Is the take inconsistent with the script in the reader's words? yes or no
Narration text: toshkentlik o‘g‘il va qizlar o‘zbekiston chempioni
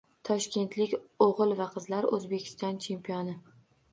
no